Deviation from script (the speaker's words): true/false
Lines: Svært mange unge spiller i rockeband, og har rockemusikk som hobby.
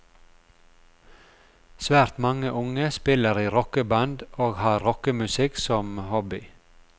false